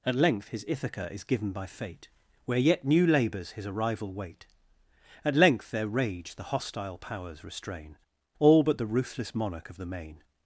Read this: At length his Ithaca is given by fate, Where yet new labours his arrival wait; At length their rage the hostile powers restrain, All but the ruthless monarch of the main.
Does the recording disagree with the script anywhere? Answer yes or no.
no